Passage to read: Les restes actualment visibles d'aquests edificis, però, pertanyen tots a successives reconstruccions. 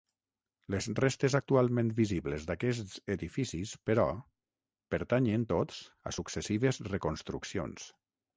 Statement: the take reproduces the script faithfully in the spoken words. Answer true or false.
true